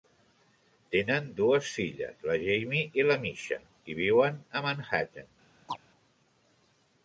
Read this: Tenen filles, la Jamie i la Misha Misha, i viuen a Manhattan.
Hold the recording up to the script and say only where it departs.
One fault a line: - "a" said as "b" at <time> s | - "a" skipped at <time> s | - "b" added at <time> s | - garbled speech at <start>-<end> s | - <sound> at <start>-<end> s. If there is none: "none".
- "dues" added at 1.4 s
- "Misha" skipped at 3.6 s
- chirp at 5.7-5.8 s